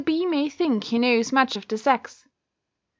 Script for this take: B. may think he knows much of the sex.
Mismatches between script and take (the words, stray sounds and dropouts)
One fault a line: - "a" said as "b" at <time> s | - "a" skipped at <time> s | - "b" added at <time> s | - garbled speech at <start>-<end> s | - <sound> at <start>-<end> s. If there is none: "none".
none